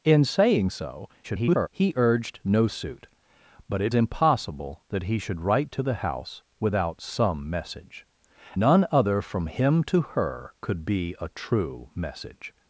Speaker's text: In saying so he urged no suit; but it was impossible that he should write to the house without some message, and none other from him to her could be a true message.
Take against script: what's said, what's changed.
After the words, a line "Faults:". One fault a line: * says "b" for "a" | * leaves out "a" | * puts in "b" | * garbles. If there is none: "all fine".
In saying so [garbled] he urged no suit; but it impossible that he should write to the house without some message, none other from him to her could be a true message.
Faults:
* garbles
* leaves out "was"
* leaves out "and"